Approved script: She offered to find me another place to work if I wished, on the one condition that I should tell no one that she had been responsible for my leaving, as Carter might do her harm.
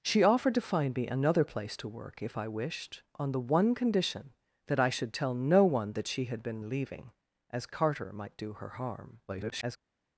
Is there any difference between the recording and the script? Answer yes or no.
yes